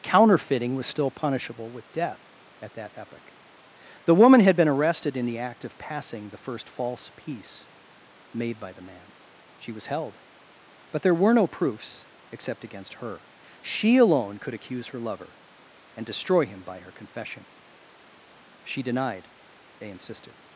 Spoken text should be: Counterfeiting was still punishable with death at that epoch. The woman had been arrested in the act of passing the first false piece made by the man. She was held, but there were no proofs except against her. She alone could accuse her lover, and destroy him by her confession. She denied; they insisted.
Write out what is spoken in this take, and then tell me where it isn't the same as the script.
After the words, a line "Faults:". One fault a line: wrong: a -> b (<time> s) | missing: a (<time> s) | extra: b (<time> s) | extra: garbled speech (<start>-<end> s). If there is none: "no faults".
Counterfeiting was still punishable with death at that epoch. The woman had been arrested in the act of passing the first false piece made by the man. She was held, but there were no proofs except against her. She alone could accuse her lover, and destroy him by her confession. She denied; they insisted.
Faults:
no faults